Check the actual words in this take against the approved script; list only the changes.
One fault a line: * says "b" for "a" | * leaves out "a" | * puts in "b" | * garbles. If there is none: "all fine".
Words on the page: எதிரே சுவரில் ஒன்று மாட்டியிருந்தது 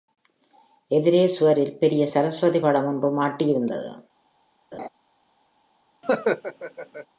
* puts in "பெரிய சரஸ்வதி படம்"